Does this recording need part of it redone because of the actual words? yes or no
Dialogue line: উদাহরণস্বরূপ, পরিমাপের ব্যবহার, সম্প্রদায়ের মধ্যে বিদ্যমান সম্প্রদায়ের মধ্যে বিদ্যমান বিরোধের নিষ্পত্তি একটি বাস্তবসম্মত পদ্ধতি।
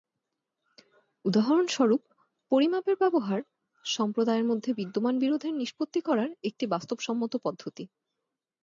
yes